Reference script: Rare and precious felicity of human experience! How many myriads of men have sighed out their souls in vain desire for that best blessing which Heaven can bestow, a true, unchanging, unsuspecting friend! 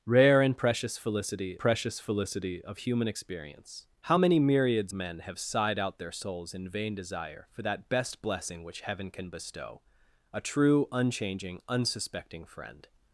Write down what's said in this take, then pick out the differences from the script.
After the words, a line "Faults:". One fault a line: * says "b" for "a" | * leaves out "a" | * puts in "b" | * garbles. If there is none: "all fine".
Rare and precious felicity precious felicity of human experience! How many myriads men have sighed out their souls in vain desire for that best blessing which Heaven can bestow, a true, unchanging, unsuspecting friend!
Faults:
* puts in "precious felicity"
* leaves out "of"